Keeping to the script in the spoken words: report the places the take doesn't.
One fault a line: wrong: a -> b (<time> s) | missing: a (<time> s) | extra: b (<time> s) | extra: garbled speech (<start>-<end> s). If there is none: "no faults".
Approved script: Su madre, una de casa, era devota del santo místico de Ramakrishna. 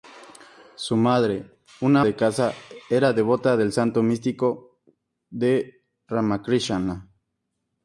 no faults